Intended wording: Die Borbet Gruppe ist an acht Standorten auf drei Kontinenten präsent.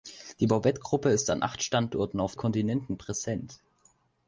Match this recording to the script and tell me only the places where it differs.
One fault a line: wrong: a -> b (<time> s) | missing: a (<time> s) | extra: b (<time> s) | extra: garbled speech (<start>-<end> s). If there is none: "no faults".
missing: drei (2.3 s)